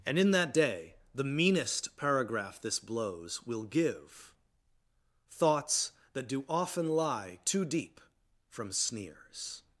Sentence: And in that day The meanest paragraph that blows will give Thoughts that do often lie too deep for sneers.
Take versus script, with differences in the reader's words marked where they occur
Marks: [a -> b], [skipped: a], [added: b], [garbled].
And in that day The meanest paragraph [that -> this] blows will give Thoughts that do often lie too deep [for -> from] sneers.